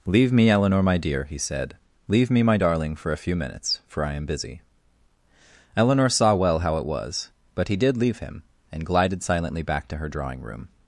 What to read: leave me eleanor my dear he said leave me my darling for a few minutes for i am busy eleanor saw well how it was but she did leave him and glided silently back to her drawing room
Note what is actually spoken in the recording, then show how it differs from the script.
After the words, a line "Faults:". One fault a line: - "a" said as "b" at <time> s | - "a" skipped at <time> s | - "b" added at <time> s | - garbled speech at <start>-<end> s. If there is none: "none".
leave me eleanor my dear he said leave me my darling for a few minutes for i am busy eleanor saw well how it was but he did leave him and glided silently back to her drawing room
Faults:
- "she" said as "he" at 7.7 s